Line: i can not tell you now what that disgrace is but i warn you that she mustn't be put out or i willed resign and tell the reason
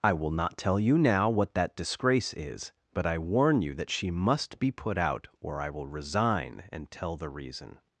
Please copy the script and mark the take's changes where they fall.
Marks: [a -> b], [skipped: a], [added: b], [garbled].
i [can -> will] not tell you now what that disgrace is but i warn you that she [mustn't -> must] be put out or i [willed -> will] resign and tell the reason